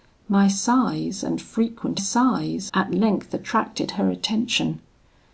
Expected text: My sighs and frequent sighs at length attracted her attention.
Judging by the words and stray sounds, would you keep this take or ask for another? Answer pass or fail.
pass